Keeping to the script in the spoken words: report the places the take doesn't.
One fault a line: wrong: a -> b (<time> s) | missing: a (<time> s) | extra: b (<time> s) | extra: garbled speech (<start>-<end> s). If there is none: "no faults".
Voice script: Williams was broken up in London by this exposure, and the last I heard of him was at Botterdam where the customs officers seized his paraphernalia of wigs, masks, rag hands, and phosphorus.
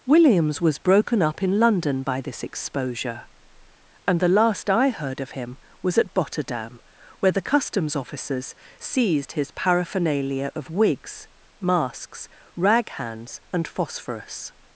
no faults